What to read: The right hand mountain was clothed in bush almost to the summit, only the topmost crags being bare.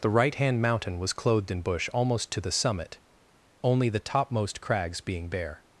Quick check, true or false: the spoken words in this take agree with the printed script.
true